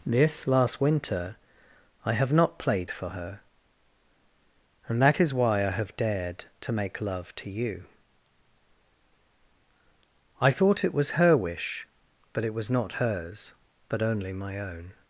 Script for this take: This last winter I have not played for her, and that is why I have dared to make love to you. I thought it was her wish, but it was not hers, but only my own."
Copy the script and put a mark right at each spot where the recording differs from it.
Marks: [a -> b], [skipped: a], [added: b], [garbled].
This last winter I have not played for her, and that is why I have dared to make love to you. I thought it was her wish, but it was not hers, but only my own."